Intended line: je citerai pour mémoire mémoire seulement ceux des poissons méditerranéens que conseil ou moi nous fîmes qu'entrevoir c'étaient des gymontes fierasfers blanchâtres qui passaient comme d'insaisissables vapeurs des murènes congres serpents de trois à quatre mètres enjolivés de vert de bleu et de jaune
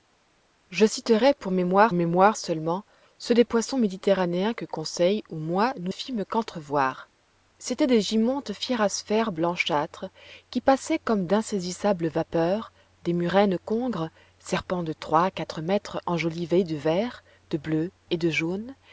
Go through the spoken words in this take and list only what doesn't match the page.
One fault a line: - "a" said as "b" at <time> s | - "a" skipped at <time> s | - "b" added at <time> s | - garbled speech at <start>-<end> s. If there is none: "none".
none